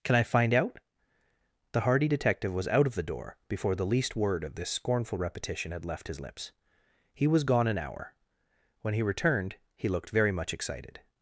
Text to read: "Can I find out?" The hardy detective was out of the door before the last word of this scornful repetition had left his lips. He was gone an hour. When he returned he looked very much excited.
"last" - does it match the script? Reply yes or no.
no